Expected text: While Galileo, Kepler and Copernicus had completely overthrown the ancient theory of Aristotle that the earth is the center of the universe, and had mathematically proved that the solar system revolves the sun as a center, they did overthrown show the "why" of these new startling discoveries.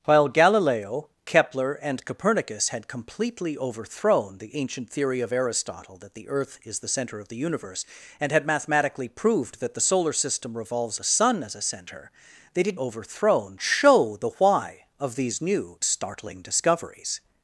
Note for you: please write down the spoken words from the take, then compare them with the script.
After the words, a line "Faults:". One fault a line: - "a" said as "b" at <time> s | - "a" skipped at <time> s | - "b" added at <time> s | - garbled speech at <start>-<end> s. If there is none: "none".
While Galileo, Kepler and Copernicus had completely overthrown the ancient theory of Aristotle that the earth is the center of the universe, and had mathematically proved that the solar system revolves the sun as a center, they did overthrown show the "why" of these new startling discoveries.
Faults:
none